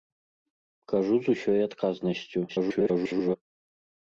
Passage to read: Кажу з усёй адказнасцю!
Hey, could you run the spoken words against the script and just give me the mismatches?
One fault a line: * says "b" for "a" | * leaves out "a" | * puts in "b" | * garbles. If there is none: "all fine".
* garbles